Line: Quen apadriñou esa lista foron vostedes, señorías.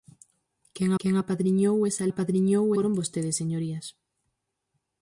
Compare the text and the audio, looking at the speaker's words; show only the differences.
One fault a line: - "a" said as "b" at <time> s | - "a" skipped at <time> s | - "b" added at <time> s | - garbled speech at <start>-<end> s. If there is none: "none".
- "quen" added at 1.0 s
- "lista" said as "apadriñou" at 2.1 s